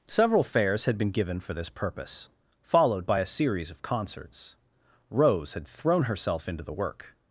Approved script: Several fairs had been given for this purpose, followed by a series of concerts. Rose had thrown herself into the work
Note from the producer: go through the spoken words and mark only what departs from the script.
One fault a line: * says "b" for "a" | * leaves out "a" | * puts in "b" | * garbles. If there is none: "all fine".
all fine